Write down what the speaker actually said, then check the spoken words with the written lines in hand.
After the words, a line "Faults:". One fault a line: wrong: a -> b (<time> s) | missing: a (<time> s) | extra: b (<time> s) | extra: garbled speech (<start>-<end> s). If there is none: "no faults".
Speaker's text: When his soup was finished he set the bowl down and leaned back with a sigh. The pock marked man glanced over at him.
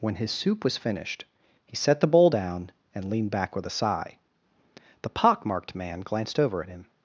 When his soup was finished he set the bowl down and leaned back with a sigh. The pock marked man glanced over at him.
Faults:
no faults